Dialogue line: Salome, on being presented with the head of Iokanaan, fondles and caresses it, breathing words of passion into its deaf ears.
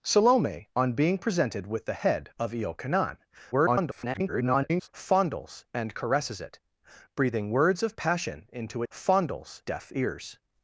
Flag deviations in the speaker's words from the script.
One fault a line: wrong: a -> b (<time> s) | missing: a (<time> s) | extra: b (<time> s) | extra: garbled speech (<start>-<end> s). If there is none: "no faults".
extra: garbled speech (3.5-4.9 s)
wrong: its -> fondles (8.9 s)